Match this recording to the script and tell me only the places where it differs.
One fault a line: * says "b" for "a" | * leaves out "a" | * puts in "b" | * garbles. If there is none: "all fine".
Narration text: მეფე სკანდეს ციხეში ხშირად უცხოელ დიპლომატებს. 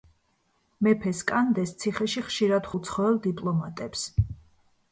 all fine